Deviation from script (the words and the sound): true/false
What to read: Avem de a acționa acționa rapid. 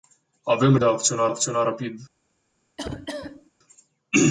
true